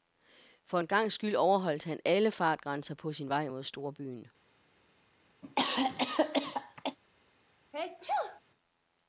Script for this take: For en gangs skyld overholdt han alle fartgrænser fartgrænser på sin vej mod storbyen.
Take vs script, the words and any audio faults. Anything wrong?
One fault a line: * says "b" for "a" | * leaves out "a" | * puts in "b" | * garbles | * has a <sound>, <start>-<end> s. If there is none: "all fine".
* leaves out "fartgrænser"
* has a cough, 5.4-7.0 s
* has a sneeze, 7.7-8.4 s